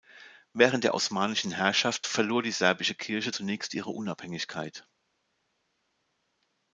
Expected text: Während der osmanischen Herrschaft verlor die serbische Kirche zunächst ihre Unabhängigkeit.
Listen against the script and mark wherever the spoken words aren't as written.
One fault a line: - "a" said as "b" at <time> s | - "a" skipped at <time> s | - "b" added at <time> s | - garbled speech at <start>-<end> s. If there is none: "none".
none